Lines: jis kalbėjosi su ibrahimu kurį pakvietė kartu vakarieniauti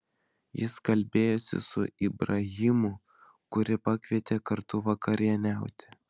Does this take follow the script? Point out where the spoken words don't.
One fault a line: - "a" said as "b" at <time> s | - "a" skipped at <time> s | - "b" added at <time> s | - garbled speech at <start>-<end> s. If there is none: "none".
none